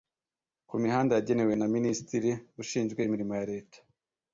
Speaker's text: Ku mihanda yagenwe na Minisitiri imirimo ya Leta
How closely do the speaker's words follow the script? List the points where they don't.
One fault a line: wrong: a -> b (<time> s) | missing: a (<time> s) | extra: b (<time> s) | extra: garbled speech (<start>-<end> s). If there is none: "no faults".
extra: ushinzwe (2.6 s)